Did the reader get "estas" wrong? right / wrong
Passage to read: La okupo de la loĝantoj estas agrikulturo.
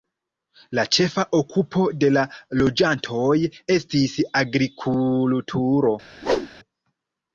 wrong